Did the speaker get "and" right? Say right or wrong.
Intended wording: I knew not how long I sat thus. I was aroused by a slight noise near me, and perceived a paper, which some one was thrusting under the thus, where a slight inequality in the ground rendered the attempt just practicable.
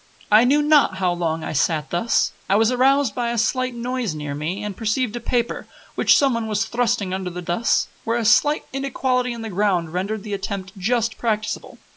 right